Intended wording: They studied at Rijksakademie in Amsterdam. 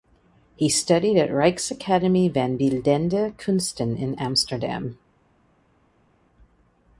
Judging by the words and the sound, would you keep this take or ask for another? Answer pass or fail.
fail